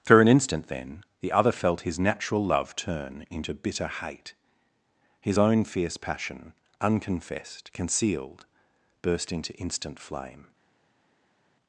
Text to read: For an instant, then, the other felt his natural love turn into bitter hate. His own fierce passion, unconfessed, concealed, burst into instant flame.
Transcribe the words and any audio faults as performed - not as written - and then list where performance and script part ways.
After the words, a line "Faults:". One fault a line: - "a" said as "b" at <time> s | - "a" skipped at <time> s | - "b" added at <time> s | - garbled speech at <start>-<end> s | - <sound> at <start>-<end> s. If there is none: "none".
For an instant, then, the other felt his natural love turn into bitter hate. His own fierce passion, unconfessed, concealed, burst into instant flame.
Faults:
none